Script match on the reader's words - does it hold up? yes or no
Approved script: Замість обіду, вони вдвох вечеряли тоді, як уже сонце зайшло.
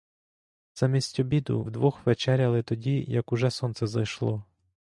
no